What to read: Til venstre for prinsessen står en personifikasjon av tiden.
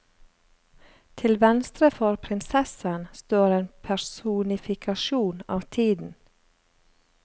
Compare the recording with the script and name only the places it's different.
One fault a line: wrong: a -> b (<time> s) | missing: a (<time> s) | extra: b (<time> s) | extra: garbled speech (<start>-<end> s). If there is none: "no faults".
no faults